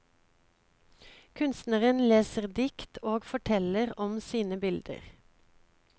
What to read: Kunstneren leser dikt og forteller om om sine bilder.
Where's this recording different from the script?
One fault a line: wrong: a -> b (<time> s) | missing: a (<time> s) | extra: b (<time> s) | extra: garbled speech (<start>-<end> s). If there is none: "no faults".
missing: om (4.2 s)